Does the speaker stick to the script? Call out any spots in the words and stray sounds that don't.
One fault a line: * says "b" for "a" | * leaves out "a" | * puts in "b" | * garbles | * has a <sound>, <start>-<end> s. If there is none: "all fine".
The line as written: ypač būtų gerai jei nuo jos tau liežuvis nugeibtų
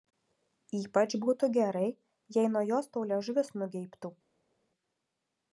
all fine